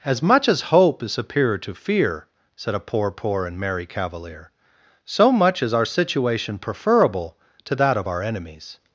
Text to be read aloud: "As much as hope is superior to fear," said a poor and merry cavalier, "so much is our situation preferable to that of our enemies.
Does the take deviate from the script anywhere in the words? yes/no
yes